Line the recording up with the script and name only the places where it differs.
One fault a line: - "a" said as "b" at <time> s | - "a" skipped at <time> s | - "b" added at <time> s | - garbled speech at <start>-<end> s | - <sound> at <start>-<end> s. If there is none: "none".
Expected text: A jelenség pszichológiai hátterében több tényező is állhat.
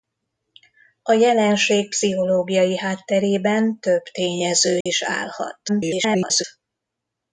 - dropout at 4.8-4.9 s
- garbled speech at 5.7-6.4 s